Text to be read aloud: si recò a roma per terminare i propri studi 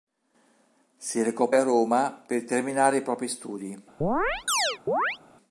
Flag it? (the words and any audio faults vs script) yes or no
yes